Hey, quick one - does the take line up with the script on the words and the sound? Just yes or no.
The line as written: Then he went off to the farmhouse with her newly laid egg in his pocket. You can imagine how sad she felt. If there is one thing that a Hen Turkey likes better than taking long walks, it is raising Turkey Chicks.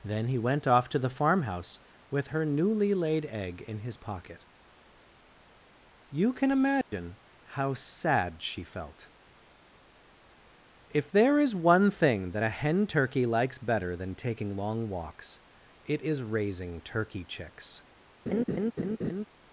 no